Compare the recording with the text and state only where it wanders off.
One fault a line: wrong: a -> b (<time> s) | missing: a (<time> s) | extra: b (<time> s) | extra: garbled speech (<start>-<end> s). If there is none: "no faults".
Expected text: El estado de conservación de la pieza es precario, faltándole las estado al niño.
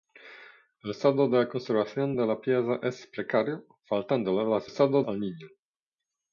no faults